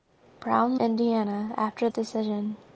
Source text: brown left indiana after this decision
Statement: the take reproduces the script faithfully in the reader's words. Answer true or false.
false